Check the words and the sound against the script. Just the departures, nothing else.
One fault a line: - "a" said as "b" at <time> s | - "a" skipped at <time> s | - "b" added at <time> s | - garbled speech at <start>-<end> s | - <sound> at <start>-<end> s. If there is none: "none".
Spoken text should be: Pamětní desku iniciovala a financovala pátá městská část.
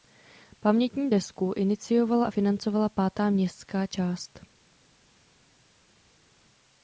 none